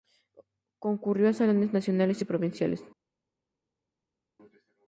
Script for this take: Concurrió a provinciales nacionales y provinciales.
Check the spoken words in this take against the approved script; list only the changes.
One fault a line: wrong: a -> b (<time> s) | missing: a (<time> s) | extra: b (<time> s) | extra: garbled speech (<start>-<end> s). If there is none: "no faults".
wrong: provinciales -> salones (1.3 s)